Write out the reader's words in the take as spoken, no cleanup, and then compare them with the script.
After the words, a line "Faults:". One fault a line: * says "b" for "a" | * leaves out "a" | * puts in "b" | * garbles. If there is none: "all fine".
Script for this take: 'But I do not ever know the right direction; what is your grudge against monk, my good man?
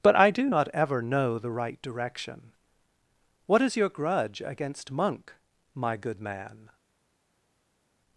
'But I do not ever know the right direction; what is your grudge against monk, my good man?
Faults:
all fine